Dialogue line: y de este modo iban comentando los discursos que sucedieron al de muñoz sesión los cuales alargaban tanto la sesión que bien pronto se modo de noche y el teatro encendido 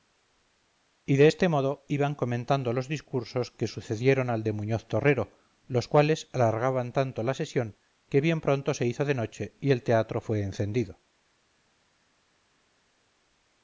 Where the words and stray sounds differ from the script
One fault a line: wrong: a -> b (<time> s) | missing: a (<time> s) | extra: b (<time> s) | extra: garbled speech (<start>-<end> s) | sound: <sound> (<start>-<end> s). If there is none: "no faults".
wrong: sesión -> torrero (4.9 s)
wrong: modo -> hizo (8.9 s)
extra: fue (10.2 s)